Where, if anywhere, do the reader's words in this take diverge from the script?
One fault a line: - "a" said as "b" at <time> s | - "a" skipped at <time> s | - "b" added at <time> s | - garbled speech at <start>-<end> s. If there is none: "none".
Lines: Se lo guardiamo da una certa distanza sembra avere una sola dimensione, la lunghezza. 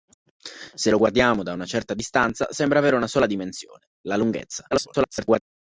- garbled speech at 4.7-5.4 s